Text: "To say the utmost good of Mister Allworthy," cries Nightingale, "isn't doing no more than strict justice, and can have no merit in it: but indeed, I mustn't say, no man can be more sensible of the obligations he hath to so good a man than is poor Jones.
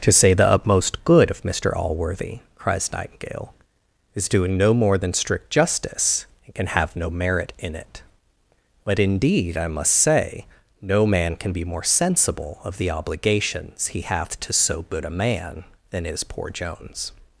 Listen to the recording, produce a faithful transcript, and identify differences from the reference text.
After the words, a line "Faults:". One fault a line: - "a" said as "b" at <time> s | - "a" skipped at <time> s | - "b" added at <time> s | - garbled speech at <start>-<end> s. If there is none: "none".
"To say the utmost good of Mister Allworthy," cries Nightingale, "is doing no more than strict justice, and can have no merit in it: but indeed, I must say, no man can be more sensible of the obligations he hath to so good a man than is poor Jones.
Faults:
- "isn't" said as "is" at 4.2 s
- "mustn't" said as "must" at 9.7 s